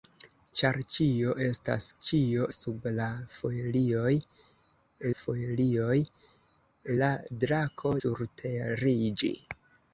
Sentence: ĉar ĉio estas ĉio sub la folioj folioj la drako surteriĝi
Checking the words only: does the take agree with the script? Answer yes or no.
yes